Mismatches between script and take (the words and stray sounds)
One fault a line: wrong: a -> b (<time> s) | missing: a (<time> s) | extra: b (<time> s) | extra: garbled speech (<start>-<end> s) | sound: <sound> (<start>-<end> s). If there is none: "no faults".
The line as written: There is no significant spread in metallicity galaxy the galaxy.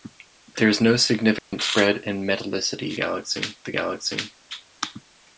sound: dropout (1.4-1.5 s)